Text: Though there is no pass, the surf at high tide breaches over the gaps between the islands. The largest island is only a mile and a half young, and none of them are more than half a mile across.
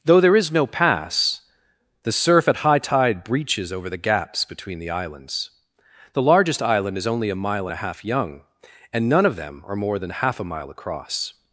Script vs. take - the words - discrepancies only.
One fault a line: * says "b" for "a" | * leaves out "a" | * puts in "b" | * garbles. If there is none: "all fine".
all fine